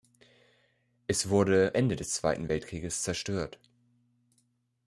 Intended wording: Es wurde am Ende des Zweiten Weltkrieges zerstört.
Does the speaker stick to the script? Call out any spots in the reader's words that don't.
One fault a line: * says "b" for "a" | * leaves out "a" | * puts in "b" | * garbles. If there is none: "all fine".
* leaves out "am"